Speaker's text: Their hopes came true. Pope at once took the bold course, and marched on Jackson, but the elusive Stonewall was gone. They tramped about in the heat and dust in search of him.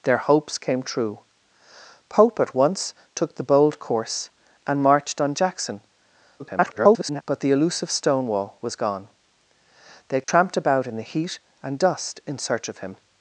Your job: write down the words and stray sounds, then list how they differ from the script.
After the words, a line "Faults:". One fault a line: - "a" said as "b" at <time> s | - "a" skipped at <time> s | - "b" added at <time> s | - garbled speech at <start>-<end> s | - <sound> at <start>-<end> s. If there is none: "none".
Their hopes came true. Pope at once took the bold course, and marched on Jackson, [garbled] but the elusive Stonewall was gone. They tramped about in the heat and dust in search of him.
Faults:
- garbled speech at 6.4-7.2 s
- dropout at 10.2-10.3 s